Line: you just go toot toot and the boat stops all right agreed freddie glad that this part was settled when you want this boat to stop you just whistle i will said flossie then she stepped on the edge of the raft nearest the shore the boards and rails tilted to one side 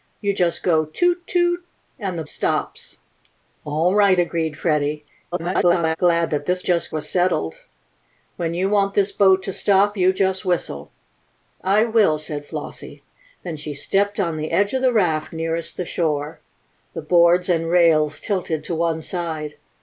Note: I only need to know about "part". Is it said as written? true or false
false